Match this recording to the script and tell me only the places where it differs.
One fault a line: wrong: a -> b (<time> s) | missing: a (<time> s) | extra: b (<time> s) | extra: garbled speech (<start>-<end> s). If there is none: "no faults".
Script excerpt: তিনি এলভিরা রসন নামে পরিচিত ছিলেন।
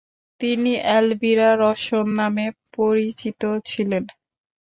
no faults